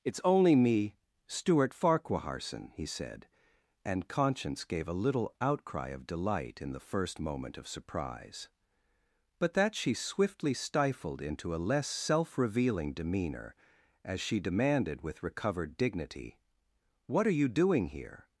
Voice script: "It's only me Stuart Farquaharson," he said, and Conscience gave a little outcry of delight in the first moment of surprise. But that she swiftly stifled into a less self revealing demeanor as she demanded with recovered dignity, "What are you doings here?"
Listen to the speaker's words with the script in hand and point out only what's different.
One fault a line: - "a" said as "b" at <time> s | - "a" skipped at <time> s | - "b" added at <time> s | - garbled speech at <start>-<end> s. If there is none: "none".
- "doings" said as "doing" at 17.5 s